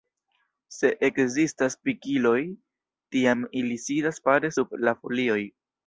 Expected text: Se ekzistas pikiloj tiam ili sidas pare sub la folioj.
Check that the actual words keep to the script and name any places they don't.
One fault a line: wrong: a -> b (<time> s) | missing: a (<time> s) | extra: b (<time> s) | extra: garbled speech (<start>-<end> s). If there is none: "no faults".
no faults